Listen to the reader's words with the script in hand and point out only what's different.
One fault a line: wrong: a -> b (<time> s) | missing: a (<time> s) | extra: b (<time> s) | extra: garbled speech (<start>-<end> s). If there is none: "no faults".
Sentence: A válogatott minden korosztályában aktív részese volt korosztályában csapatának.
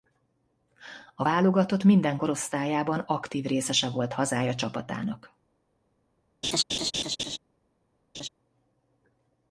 wrong: korosztályában -> hazája (4.1 s)